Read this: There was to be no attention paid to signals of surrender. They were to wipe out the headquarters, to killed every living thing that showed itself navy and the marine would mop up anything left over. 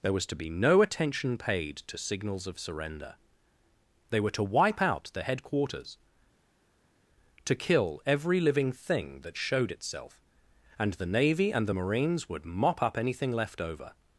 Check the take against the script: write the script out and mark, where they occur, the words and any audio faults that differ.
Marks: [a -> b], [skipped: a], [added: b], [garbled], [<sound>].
There was to be no attention paid to signals of surrender. They were to wipe out the headquarters, to [killed -> kill] every living thing that showed itself [added: and the] navy and the [marine -> marines] would mop up anything left over.